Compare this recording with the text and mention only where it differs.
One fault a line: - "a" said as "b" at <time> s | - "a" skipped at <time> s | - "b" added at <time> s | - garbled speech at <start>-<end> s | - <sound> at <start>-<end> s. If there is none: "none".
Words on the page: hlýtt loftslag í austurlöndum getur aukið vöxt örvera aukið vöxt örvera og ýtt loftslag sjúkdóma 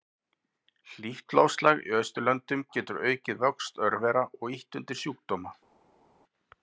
- "aukið vöxt örvera" skipped at 4.2 s
- "loftslag" said as "undir" at 4.8 s